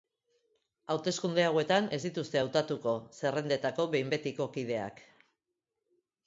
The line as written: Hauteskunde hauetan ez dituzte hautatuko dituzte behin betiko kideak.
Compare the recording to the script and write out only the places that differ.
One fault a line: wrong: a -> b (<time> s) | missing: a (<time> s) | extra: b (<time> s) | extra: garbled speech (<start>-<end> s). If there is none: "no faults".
wrong: dituzte -> zerrendetako (3.2 s)